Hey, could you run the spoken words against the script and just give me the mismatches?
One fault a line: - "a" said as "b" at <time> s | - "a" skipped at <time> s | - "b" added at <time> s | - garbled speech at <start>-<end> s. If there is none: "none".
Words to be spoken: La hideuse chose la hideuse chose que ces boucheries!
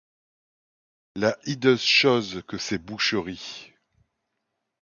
- "la hideuse chose" skipped at 2.4 s